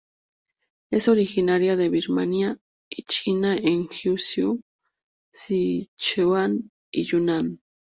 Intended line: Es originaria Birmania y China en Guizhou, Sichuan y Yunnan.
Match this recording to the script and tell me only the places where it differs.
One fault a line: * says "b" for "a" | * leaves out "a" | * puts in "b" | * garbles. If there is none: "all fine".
* puts in "de"